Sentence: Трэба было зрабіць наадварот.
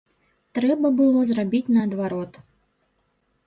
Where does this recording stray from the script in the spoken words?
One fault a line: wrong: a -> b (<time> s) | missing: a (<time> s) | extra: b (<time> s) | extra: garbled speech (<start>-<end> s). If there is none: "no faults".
no faults